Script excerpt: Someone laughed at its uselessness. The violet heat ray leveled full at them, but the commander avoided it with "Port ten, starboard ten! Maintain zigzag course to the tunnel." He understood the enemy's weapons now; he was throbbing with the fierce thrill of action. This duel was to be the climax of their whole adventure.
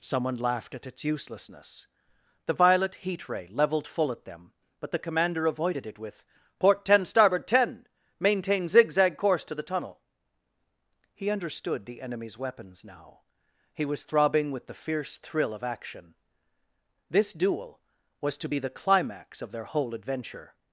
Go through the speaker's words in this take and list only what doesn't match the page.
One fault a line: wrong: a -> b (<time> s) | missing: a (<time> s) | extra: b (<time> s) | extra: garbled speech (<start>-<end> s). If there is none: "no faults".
no faults